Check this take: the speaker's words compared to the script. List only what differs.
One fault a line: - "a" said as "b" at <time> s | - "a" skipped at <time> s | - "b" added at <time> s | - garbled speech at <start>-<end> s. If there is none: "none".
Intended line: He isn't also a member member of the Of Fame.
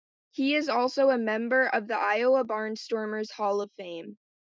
- "isn't" said as "is" at 0.6 s
- "member" skipped at 1.7 s
- "Iowa Barnstormers Hall" added at 2.0 s